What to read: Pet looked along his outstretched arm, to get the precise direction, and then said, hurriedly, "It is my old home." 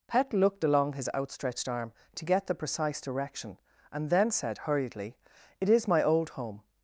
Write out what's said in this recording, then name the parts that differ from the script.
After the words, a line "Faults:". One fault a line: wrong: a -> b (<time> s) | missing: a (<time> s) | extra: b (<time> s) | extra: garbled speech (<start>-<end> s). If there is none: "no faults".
Pet looked along his outstretched arm, to get the precise direction, and then said, hurriedly, "It is my old home."
Faults:
no faults